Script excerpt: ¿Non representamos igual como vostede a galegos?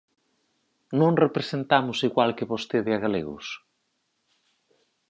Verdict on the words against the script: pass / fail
fail